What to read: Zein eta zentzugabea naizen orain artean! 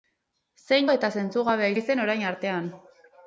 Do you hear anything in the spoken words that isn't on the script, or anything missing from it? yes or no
no